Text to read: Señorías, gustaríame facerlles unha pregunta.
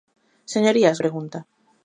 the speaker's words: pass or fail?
fail